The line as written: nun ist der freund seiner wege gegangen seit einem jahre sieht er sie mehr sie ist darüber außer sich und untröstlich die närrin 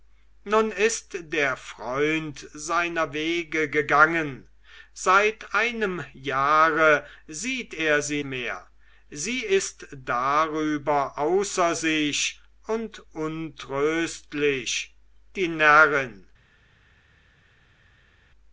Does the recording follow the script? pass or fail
pass